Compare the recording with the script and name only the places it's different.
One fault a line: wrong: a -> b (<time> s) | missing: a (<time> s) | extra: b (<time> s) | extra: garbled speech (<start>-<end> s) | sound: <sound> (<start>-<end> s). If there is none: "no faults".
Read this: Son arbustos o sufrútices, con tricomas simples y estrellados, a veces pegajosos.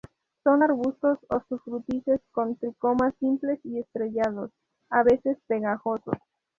no faults